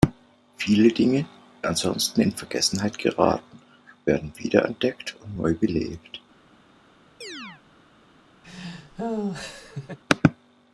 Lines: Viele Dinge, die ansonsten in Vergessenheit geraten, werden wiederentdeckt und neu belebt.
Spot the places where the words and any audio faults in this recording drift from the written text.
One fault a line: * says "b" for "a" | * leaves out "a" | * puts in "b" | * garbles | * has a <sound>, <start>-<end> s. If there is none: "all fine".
* leaves out "die"
* has a chirp, 7.2-7.6 s
* has a laugh, 8.4-10.0 s